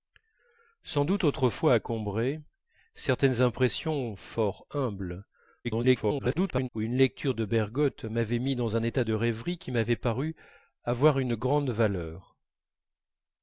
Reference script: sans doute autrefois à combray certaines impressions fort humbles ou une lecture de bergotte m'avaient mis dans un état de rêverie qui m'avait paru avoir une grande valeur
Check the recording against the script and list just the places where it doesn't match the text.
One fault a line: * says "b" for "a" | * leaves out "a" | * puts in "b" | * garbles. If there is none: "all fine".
* garbles